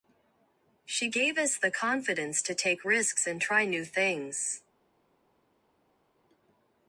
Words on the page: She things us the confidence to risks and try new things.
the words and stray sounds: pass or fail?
fail